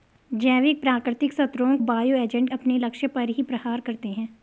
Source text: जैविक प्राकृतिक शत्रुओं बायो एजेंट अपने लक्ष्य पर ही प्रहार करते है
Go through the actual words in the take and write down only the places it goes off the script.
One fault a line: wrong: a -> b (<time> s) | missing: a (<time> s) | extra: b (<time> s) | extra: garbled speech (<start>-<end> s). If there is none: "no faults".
no faults